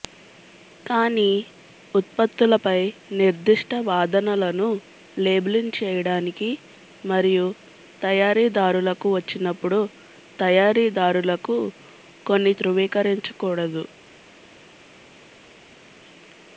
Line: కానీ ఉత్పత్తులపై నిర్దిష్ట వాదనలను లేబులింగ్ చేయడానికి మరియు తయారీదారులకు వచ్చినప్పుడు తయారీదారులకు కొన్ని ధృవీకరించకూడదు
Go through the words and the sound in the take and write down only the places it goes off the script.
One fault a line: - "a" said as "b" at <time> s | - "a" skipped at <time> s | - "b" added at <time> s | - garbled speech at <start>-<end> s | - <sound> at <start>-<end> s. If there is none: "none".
none